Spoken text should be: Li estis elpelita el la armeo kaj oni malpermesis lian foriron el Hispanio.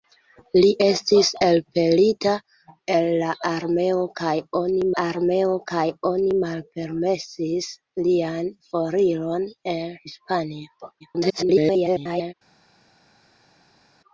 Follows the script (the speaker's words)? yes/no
no